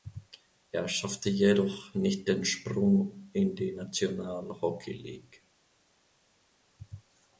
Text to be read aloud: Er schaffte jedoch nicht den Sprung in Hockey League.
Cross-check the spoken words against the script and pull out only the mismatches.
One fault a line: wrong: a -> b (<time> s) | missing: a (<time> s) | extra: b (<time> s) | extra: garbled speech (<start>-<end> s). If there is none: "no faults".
extra: die National (3.5 s)